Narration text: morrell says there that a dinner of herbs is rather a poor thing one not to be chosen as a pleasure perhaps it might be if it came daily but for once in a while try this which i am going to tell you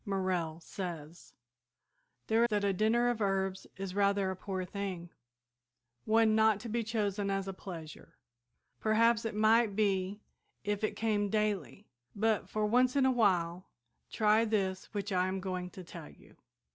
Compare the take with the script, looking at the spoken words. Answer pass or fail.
pass